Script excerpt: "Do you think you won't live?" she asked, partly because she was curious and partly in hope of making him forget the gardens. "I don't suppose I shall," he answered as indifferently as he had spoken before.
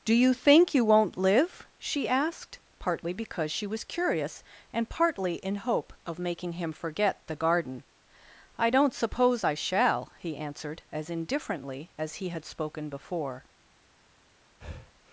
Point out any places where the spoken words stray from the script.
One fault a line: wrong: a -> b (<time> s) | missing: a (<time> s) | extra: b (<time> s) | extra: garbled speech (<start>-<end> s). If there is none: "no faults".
wrong: gardens -> garden (7.3 s)